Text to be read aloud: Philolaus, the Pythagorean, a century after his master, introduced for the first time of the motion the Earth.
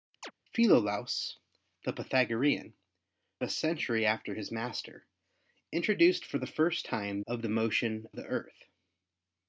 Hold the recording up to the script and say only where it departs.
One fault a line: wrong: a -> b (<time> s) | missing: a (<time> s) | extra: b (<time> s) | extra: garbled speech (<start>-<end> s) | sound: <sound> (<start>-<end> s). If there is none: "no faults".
sound: chirp (0.2-0.3 s)